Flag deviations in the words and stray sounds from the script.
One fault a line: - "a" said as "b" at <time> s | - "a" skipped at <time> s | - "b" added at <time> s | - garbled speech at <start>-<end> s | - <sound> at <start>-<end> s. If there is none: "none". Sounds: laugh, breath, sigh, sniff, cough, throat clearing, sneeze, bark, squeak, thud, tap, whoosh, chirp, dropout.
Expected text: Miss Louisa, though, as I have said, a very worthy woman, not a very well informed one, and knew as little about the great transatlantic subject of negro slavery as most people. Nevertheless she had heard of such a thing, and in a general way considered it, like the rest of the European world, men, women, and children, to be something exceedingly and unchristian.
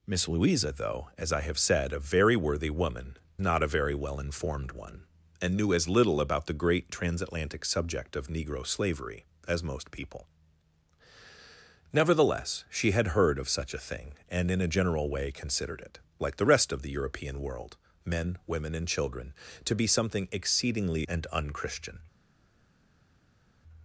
none